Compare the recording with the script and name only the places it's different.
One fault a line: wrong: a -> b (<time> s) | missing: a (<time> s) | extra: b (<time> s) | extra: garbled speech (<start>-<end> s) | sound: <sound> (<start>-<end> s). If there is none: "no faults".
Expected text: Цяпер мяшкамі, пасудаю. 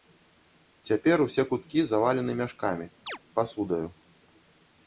extra: усе куткі завалены (1.2 s)
sound: chirp (3.1-3.2 s)